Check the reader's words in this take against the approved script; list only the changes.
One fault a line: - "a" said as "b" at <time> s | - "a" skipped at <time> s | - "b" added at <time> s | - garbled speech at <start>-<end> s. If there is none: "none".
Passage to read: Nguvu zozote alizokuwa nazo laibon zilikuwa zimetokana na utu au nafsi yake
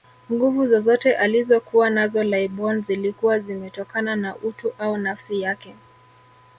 none